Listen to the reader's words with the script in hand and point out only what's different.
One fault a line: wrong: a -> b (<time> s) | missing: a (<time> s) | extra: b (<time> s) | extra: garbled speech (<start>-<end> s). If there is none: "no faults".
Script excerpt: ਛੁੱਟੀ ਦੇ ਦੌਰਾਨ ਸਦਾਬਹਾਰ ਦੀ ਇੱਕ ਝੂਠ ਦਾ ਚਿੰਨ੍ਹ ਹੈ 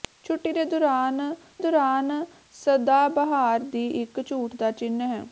extra: ਦੌਰਾਨ (1.6 s)